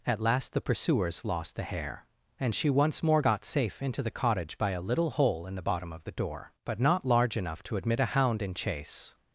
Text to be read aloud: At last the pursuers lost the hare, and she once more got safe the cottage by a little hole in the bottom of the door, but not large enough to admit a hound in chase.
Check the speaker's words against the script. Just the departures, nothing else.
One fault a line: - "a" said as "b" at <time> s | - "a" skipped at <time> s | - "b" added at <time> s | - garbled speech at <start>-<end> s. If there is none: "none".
- "into" added at 3.8 s